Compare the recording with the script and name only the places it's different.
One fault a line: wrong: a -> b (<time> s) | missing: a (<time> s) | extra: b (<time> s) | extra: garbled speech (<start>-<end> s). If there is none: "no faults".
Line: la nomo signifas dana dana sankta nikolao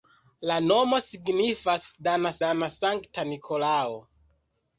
no faults